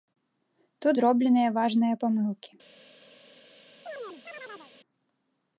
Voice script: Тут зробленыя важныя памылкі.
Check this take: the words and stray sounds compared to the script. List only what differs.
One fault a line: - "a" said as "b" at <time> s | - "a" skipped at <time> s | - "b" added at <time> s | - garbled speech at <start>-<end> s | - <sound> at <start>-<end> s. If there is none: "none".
- chirp at 3.9-4.7 s